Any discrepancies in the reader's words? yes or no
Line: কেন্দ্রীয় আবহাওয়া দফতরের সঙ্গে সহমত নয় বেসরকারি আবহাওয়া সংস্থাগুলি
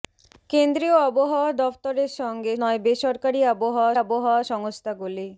yes